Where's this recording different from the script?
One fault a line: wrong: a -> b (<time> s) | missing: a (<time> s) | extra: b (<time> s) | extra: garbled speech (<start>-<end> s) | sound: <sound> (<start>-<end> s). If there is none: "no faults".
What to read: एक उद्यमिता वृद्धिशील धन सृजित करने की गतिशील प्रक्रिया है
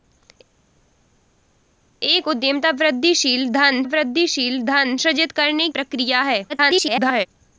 extra: वृद्धिशील धन (3.9 s)
missing: की गतिशील (5.7 s)
extra: garbled speech (6.5-7.3 s)